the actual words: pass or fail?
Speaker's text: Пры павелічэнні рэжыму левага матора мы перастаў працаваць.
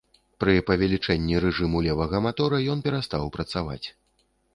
fail